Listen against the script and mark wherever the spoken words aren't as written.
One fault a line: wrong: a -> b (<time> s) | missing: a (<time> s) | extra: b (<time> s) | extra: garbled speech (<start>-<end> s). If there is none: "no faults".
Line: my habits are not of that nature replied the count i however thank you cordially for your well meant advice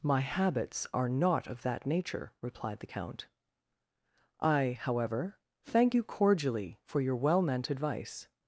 no faults